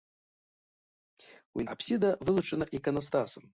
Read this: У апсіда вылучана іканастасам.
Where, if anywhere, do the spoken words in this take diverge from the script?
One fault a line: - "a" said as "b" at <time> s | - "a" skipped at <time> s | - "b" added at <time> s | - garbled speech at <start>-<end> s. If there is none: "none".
none